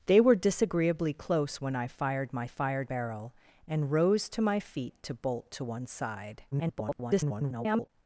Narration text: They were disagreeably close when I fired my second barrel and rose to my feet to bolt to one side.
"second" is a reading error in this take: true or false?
true